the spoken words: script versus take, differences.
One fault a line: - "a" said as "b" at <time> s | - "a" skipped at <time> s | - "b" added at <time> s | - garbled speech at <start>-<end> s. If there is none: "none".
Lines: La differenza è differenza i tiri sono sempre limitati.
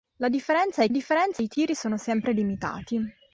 none